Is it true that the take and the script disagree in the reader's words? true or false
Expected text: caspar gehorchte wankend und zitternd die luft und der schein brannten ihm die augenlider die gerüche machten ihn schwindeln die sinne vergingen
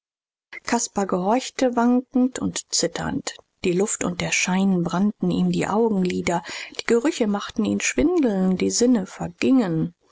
false